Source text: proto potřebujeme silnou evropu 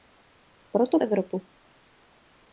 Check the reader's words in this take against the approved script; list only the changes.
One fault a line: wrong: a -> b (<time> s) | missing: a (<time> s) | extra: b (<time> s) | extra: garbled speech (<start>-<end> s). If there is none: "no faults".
missing: potřebujeme silnou (1.0 s)